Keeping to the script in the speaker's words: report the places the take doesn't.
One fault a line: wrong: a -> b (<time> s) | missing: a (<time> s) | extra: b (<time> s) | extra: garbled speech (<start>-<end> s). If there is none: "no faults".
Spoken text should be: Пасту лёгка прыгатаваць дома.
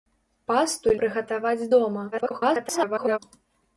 missing: лёгка (0.9 s)
extra: garbled speech (2.1-3.2 s)